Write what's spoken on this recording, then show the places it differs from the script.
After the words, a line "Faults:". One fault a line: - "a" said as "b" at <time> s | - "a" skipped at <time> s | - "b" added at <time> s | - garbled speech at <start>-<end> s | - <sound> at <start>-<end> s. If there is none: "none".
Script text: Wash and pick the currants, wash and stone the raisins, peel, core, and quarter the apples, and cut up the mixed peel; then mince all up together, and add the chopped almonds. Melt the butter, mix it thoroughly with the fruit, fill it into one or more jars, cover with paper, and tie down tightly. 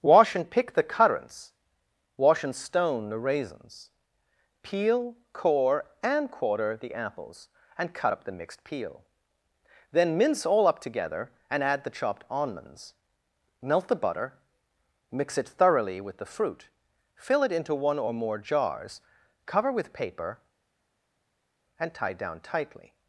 Wash and pick the currants, wash and stone the raisins, peel, core, and quarter the apples, and cut up the mixed peel; then mince all up together, and add the chopped almonds. Melt the butter, mix it thoroughly with the fruit, fill it into one or more jars, cover with paper, and tie down tightly.
Faults:
none